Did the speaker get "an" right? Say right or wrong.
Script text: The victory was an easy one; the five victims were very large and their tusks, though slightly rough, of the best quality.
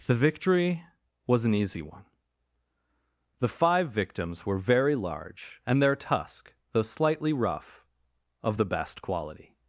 right